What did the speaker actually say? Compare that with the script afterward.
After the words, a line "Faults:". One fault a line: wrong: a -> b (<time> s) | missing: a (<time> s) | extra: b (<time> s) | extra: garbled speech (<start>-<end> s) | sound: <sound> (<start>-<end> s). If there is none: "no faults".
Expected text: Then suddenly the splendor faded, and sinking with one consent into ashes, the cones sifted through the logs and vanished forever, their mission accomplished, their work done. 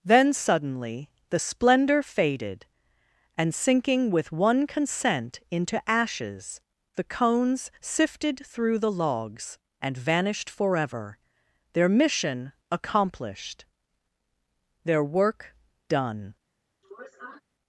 Then suddenly the splendor faded, and sinking with one consent into ashes, the cones sifted through the logs and vanished forever, their mission accomplished, their work done.
Faults:
sound: sniff (16.8-17.4 s)